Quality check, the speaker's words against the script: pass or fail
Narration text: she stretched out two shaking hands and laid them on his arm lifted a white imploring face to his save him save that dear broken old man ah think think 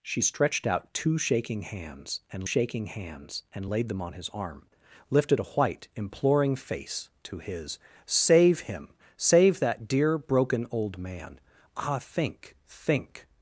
fail